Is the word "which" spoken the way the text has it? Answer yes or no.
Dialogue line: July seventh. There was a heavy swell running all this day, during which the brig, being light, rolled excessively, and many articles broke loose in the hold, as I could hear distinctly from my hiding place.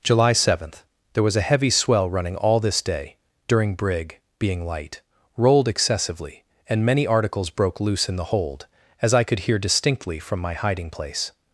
no